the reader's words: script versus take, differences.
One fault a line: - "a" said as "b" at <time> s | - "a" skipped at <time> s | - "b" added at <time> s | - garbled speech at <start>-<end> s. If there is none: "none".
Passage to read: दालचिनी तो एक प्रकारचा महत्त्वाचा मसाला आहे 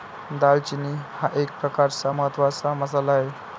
- "तो" said as "हा" at 1.1 s